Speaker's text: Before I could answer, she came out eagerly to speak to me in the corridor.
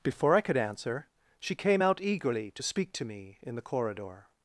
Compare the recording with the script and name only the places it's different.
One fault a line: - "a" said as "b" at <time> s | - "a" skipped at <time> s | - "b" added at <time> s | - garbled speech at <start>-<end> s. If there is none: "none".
none